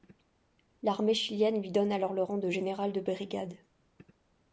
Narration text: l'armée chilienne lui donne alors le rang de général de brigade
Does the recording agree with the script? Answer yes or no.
yes